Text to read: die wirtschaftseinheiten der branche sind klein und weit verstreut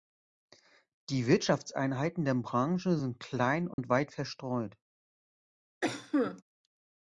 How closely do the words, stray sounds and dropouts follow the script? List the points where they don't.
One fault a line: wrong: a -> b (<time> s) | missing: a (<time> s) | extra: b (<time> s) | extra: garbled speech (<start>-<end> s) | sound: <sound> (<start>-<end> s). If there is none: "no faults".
sound: dropout (3.7-3.8 s)
sound: cough (5.8-6.4 s)